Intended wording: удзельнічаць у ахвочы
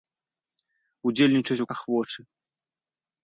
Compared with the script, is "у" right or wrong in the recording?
right